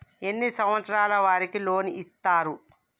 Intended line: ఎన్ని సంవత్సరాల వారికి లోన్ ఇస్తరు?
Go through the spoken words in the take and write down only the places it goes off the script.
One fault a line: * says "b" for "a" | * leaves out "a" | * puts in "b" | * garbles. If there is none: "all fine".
all fine